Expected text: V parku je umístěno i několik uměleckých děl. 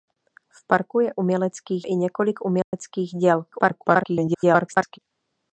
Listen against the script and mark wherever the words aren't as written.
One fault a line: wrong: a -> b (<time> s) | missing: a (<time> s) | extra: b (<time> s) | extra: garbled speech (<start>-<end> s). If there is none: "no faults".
wrong: umístěno -> uměleckých (1.2 s)
extra: garbled speech (3.5-5.0 s)